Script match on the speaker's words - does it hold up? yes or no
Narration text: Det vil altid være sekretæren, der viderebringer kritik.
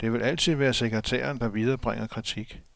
yes